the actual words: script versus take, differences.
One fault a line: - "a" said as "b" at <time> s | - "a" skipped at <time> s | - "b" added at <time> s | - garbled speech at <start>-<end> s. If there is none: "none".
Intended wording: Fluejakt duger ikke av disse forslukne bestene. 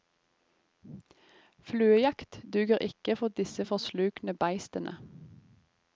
- "av" said as "for" at 3.1 s